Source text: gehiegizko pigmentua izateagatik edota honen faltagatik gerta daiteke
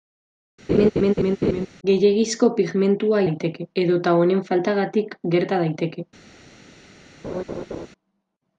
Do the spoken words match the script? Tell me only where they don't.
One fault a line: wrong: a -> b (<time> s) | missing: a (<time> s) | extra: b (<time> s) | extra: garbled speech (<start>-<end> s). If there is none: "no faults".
wrong: izateagatik -> daiteke (3.3 s)